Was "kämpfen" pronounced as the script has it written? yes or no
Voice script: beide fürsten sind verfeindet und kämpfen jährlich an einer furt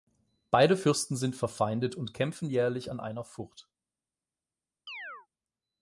yes